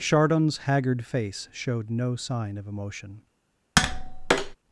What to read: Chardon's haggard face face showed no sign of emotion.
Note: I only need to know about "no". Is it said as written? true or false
true